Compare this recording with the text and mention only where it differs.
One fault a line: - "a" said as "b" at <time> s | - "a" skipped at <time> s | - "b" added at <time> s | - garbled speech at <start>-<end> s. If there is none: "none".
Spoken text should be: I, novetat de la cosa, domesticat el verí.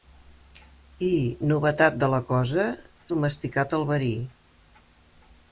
none